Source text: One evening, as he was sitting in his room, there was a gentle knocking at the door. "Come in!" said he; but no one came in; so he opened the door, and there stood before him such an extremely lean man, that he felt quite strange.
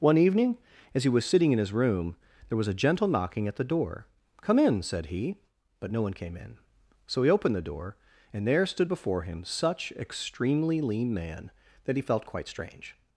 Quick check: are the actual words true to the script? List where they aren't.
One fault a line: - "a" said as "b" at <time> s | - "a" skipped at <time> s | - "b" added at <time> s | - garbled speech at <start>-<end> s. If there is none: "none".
- "an" skipped at 9.9 s